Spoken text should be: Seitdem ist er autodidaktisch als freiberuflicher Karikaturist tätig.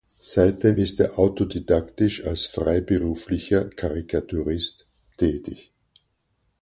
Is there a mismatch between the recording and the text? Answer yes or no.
no